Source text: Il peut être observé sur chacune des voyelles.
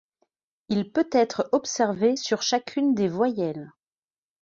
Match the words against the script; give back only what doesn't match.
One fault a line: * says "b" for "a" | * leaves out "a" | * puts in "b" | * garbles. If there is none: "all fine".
all fine